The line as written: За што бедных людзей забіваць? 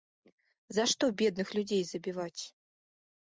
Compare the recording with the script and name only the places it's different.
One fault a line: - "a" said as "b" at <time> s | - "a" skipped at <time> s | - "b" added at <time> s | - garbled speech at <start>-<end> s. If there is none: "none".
none